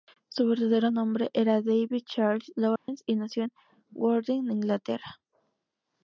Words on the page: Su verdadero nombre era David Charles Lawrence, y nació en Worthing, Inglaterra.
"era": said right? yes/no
yes